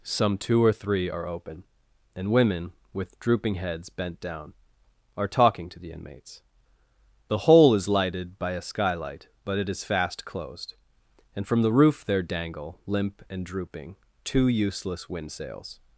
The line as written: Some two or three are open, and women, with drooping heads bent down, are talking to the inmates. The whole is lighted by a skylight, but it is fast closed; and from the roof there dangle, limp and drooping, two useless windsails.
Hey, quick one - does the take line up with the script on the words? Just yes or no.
yes